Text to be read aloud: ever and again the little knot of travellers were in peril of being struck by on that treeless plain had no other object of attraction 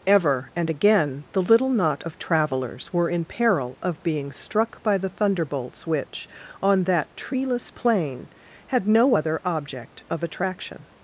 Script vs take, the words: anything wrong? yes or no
yes